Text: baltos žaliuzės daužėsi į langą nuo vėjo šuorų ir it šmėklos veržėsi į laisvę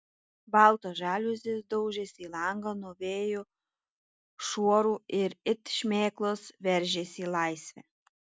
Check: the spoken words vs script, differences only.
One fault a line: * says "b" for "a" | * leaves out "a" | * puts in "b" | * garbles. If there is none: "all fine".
all fine